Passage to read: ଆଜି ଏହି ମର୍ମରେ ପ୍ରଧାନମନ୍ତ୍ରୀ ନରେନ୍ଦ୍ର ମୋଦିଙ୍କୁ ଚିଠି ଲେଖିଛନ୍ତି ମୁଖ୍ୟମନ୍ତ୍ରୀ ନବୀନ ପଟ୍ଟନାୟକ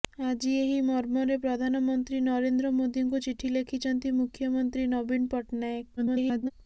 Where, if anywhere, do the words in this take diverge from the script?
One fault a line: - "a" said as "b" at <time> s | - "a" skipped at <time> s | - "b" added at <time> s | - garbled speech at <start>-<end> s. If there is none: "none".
- garbled speech at 6.0-6.5 s